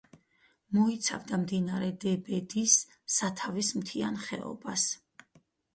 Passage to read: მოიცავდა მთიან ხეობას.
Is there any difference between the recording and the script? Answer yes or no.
yes